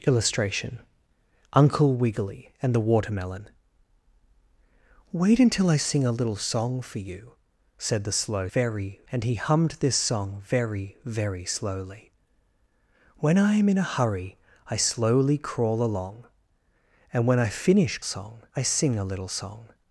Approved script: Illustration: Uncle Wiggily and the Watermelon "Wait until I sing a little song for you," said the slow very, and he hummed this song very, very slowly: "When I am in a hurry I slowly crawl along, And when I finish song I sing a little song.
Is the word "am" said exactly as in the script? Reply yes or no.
yes